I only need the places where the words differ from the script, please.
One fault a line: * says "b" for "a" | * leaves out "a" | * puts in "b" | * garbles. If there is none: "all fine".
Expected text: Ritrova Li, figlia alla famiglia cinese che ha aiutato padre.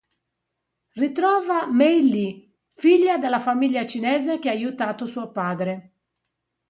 * puts in "Mei"
* says "della" for "alla"
* puts in "suo"